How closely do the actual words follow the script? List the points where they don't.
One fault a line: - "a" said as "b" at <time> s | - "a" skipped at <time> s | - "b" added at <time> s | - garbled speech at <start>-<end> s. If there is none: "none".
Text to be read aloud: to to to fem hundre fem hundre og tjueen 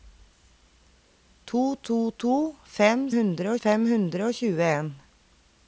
none